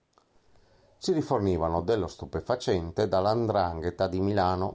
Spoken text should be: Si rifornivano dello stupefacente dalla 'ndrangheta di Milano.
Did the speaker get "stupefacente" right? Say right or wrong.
right